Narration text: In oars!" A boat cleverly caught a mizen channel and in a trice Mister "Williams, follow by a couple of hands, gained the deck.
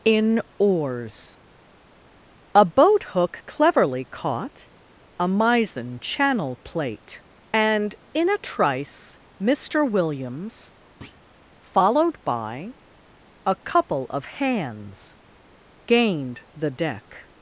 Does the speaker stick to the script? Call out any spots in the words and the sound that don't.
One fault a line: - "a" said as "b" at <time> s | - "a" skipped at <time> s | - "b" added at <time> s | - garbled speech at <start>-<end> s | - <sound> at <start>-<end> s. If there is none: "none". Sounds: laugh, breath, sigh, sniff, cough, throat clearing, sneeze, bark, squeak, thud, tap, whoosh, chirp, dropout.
- "hook" added at 3.1 s
- "plate" added at 6.6 s
- thud at 11.0-11.2 s
- "follow" said as "followed" at 11.6 s